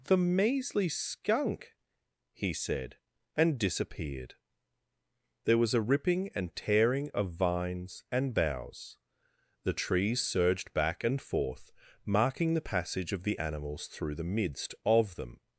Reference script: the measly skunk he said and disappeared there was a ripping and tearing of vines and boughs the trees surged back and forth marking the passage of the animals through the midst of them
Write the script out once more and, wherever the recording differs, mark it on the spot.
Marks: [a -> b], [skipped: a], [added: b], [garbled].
the measly skunk he said and disappeared there was a ripping and tearing of vines and boughs the trees surged back and forth marking the passage of the animals through the midst of them